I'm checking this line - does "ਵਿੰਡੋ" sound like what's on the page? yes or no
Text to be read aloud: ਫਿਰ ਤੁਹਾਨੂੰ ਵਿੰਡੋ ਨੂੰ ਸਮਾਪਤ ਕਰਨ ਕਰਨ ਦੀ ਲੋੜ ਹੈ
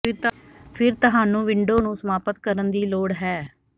yes